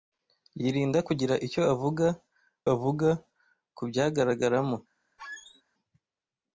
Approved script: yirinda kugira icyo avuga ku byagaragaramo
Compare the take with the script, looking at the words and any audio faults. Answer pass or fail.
fail